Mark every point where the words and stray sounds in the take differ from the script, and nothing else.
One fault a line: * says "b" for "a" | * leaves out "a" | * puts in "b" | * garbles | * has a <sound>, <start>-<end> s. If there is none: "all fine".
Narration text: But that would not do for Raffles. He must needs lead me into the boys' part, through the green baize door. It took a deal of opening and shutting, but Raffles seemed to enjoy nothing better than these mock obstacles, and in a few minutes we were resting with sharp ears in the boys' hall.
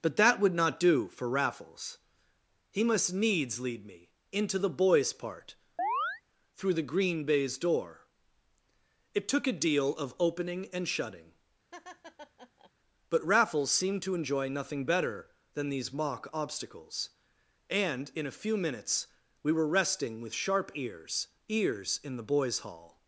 * has a chirp, 5.8-6.2 s
* has a laugh, 11.7-12.7 s
* puts in "ears"